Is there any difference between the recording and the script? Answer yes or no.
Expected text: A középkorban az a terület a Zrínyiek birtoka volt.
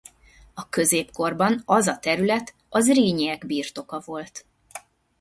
no